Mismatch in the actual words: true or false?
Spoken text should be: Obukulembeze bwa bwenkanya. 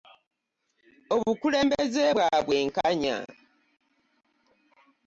false